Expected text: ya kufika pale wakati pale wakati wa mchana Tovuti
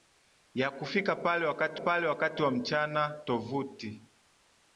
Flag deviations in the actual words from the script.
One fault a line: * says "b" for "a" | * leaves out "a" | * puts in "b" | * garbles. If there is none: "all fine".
all fine